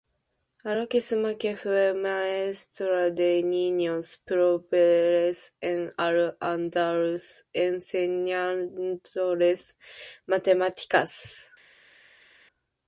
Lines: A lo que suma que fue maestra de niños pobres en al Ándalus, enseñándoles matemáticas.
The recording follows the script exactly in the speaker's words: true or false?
true